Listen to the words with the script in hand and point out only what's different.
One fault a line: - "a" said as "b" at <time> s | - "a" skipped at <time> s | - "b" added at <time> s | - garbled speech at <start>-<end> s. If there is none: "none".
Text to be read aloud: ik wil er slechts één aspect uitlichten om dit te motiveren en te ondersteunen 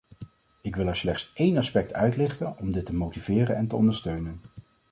none